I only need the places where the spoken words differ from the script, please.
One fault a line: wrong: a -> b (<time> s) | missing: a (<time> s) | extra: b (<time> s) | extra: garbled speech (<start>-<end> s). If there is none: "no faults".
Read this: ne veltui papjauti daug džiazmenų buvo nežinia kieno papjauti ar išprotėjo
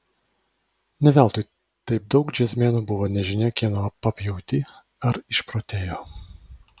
wrong: papjauti -> taip (1.9 s)